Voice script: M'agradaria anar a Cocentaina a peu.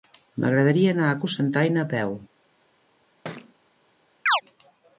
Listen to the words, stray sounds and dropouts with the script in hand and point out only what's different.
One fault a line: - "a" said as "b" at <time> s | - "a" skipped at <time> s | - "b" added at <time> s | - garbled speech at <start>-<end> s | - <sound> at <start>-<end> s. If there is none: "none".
- thud at 3.2-3.5 s
- chirp at 4.3-4.4 s